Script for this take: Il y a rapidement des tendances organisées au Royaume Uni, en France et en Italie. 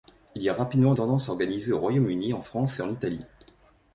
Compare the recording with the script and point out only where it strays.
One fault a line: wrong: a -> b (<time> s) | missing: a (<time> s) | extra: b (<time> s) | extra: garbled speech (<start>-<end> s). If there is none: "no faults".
missing: des (0.9 s)